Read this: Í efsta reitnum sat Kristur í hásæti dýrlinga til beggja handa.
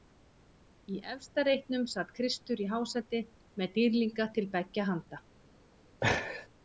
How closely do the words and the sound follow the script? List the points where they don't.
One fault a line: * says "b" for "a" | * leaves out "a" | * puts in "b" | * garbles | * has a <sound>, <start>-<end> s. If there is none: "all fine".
* puts in "með"
* has a laugh, 6.0-6.5 s